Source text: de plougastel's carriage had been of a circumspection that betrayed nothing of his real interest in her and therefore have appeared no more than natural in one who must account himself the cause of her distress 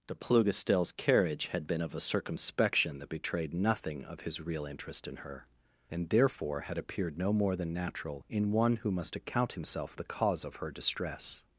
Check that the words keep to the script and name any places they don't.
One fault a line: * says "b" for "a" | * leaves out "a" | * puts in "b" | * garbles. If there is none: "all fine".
* says "had" for "have"